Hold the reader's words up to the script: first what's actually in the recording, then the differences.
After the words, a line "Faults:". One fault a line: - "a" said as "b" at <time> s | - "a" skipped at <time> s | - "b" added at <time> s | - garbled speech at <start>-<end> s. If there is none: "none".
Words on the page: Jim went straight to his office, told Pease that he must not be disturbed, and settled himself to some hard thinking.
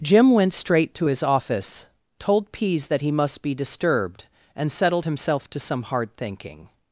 Jim went straight to his office, told Pease that he must be disturbed, and settled himself to some hard thinking.
Faults:
- "not" skipped at 3.4 s